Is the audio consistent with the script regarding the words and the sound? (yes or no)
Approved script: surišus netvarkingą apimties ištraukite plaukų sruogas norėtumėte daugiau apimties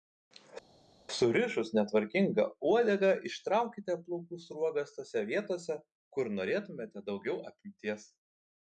no